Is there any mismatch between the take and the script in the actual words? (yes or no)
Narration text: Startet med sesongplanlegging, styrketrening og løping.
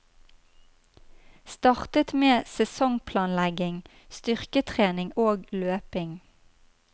no